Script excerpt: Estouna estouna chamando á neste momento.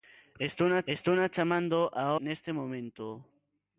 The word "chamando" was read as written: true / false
true